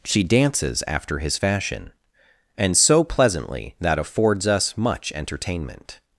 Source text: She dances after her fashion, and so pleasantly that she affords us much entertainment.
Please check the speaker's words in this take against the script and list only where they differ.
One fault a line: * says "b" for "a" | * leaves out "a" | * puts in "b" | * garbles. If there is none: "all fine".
* says "his" for "her"
* leaves out "she"